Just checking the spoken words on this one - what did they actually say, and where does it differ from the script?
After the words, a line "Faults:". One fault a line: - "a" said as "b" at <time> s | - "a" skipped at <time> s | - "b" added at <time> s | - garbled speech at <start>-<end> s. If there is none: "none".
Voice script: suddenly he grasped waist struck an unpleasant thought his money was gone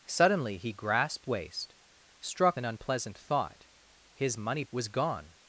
suddenly he grasped waist struck an unpleasant thought his money was gone
Faults:
none